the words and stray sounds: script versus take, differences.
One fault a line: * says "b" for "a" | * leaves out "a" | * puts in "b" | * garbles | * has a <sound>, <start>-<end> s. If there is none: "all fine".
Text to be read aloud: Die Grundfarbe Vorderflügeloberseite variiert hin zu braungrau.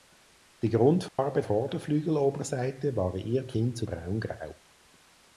* has a dropout, 1.1-1.2 s